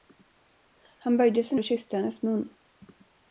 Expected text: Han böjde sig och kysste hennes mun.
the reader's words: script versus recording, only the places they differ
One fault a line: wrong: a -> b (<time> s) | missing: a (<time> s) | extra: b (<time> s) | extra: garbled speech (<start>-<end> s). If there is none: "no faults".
no faults